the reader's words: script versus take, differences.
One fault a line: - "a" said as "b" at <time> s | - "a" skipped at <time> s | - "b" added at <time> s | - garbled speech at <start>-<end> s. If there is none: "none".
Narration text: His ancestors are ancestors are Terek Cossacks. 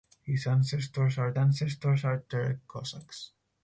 none